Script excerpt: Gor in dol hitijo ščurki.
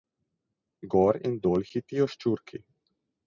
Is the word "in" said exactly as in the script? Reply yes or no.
yes